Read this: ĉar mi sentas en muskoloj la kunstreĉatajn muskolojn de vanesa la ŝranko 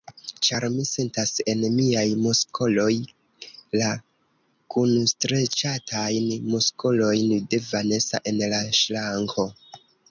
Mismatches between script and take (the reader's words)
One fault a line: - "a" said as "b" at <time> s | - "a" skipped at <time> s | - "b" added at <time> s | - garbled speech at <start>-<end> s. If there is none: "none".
- "miaj" added at 1.7 s
- "en" added at 8.3 s